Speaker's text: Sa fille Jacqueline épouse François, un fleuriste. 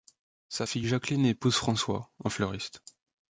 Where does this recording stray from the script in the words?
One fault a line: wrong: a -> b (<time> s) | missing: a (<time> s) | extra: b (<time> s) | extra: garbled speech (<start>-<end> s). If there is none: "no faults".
no faults